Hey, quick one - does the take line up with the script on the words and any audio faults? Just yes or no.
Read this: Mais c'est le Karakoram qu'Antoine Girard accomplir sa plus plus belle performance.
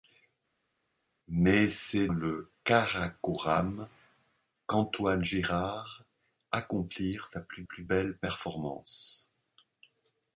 yes